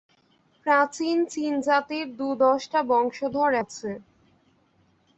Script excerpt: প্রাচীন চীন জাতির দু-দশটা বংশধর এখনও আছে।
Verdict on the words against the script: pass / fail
fail